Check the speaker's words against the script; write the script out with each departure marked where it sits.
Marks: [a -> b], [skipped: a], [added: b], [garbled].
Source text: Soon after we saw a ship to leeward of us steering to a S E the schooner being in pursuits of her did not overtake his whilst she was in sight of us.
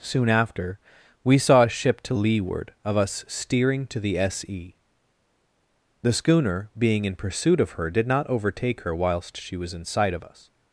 Soon after we saw a ship to leeward of us steering to [a -> the] S E the schooner being in [pursuits -> pursuit] of her did not overtake [his -> her] whilst she was in sight of us.